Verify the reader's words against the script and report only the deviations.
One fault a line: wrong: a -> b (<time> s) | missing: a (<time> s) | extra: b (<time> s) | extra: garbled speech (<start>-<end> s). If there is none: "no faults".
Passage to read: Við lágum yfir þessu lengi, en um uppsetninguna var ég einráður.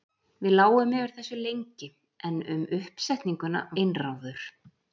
missing: var ég (3.6 s)